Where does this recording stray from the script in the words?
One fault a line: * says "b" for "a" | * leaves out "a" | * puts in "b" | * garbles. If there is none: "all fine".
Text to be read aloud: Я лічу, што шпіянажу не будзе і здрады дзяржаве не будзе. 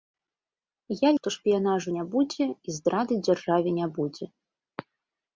* leaves out "лічу"